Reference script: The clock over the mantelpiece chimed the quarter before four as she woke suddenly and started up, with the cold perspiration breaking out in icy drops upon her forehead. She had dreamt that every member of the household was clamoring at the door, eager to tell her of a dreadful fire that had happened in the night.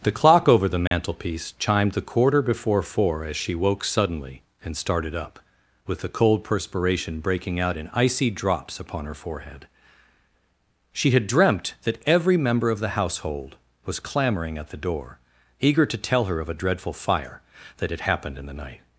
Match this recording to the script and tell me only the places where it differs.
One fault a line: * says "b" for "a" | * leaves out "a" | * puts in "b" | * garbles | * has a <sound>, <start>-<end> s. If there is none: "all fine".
* has a dropout, 0.9-0.9 s